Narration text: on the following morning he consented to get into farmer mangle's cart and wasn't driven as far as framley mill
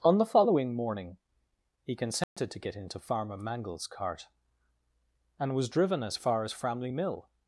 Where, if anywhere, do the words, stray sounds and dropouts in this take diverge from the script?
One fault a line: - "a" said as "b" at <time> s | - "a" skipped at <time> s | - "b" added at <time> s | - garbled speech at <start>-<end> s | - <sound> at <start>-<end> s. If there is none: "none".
- dropout at 2.2-2.4 s
- "wasn't" said as "was" at 5.5 s